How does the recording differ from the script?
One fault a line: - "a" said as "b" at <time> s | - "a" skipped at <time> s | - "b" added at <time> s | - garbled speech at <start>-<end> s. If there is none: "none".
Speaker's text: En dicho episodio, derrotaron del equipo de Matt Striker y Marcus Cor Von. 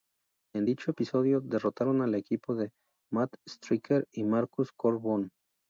- "del" said as "al" at 2.0 s